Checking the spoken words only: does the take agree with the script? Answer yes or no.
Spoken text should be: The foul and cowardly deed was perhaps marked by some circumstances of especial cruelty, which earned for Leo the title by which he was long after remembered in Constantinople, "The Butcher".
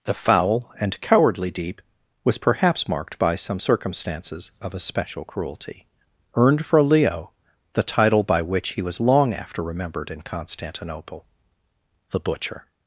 no